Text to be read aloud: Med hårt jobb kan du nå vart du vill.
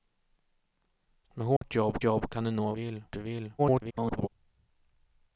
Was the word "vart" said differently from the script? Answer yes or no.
yes